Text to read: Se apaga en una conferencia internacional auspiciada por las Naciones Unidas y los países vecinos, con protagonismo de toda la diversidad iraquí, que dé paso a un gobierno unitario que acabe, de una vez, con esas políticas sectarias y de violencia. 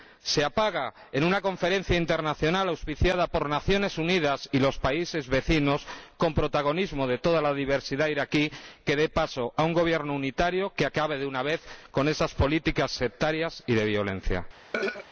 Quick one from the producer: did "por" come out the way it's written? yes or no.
yes